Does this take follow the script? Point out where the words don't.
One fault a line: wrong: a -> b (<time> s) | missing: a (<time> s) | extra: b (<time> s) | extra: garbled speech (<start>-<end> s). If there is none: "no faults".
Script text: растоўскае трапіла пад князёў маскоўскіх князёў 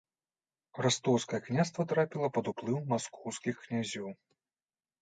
extra: княства (1.5 s)
wrong: князёў -> уплыў (2.5 s)